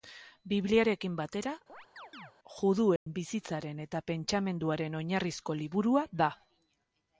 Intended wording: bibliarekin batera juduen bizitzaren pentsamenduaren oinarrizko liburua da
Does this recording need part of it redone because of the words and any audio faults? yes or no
yes